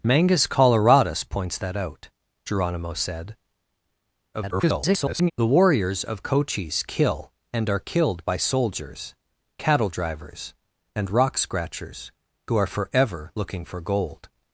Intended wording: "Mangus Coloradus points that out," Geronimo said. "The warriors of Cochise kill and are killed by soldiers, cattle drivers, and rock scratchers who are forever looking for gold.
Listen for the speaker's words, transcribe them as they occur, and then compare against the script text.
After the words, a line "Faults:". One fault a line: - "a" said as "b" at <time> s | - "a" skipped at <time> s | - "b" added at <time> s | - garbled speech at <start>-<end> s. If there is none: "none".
"Mangus Coloradus points that out," Geronimo said. [garbled] "The warriors of Cochise kill and are killed by soldiers, cattle drivers, and rock scratchers who are forever looking for gold.
Faults:
- garbled speech at 4.3-5.3 s